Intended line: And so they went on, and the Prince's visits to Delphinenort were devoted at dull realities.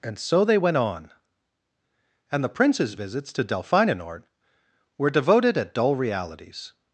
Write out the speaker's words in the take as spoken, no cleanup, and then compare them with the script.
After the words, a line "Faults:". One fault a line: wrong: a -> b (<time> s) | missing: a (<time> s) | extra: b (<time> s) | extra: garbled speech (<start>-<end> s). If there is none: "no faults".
And so they went on, and the Prince's visits to Delphinenort were devoted at dull realities.
Faults:
no faults